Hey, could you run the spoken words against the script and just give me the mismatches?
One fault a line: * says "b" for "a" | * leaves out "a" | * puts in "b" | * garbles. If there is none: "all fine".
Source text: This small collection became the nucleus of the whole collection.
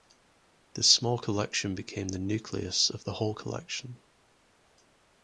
all fine